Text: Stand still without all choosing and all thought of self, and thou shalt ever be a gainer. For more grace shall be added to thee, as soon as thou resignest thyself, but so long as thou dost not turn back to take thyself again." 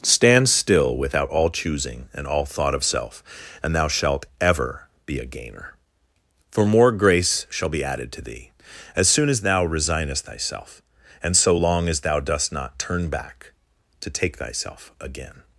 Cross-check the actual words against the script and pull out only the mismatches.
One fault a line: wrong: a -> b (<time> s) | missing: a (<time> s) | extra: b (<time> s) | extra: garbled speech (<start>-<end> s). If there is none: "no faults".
wrong: but -> and (11.2 s)